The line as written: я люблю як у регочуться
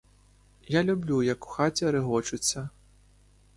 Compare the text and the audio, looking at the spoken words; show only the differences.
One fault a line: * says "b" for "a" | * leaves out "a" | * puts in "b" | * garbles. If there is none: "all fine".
* puts in "хаті"